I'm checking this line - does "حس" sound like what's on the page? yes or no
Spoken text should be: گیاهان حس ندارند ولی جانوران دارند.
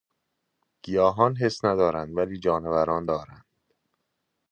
yes